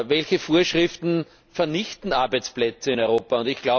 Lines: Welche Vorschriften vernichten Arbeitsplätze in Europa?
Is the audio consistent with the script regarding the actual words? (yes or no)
yes